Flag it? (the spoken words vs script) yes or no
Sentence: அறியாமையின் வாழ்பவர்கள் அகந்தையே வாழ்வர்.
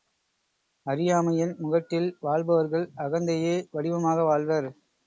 yes